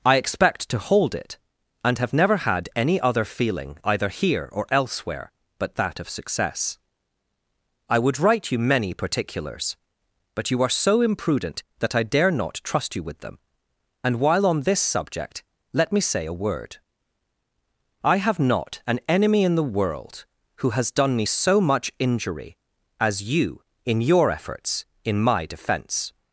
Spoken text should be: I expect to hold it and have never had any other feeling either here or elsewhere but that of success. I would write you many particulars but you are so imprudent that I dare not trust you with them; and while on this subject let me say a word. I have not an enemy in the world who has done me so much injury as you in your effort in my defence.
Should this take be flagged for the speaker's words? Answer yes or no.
yes